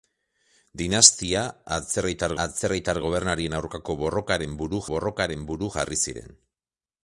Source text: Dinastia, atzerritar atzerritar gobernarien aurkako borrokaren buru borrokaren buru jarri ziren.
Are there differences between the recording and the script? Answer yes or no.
no